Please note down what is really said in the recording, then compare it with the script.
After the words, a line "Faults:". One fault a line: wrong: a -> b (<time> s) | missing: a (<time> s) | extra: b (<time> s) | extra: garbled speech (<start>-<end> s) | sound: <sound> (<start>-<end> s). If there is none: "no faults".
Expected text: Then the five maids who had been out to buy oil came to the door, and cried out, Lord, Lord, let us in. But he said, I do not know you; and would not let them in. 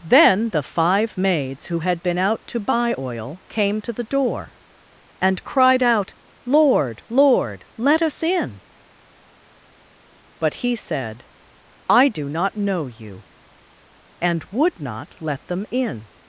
Then the five maids who had been out to buy oil came to the door, and cried out, Lord, Lord, let us in. But he said, I do not know you; and would not let them in.
Faults:
no faults